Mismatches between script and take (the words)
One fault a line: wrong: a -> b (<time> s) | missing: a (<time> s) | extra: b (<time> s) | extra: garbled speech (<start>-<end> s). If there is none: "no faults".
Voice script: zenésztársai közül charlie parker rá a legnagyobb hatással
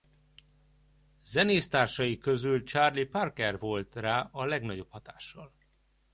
extra: volt (3.6 s)